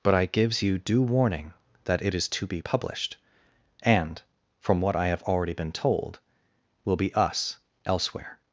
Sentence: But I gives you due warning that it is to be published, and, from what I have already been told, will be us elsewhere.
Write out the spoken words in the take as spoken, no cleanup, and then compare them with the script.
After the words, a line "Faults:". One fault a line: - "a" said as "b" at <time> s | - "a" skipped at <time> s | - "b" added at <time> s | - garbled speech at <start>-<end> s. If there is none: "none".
But I gives you due warning that it is to be published, and, from what I have already been told, will be us elsewhere.
Faults:
none